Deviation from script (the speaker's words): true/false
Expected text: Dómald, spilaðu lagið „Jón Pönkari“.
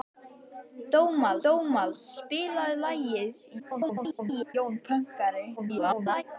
true